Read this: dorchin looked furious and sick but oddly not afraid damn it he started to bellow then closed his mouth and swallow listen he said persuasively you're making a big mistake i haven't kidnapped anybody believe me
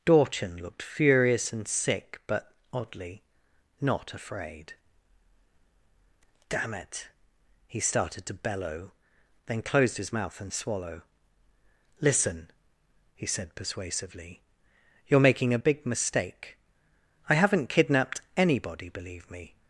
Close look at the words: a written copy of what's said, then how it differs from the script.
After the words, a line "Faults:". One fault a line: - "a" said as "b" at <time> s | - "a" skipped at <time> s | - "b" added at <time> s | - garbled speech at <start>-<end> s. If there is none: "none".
dorchin looked furious and sick but oddly not afraid damn it he started to bellow then closed his mouth and swallow listen he said persuasively you're making a big mistake i haven't kidnapped anybody believe me
Faults:
none